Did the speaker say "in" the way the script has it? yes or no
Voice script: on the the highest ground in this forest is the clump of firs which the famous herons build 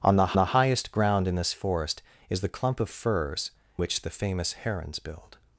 yes